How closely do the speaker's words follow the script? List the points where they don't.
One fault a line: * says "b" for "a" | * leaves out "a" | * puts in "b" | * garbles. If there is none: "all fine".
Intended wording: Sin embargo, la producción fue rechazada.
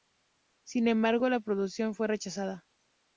all fine